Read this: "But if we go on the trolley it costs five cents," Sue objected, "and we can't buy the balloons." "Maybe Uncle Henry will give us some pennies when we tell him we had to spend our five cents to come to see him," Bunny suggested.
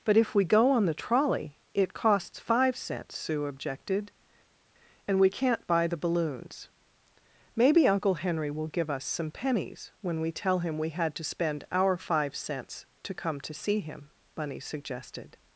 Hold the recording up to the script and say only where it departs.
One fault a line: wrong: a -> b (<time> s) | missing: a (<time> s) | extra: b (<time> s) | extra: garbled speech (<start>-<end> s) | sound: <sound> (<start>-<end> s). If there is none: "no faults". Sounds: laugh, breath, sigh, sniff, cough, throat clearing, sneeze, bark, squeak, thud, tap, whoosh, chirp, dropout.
no faults